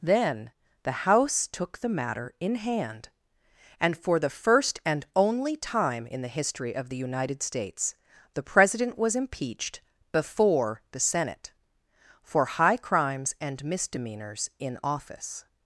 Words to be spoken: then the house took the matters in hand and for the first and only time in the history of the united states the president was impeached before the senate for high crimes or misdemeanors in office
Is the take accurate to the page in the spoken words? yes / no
no